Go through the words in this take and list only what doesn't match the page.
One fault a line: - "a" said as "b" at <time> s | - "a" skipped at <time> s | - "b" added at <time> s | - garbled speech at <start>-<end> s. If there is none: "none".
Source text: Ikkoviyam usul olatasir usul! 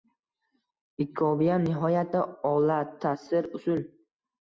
- "usul" said as "nihoyatda" at 1.7 s